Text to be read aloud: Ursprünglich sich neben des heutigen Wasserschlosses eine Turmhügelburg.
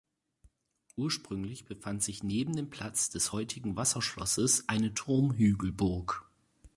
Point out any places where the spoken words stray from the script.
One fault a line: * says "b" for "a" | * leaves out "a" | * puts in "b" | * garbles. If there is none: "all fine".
* puts in "befand"
* puts in "dem Platz"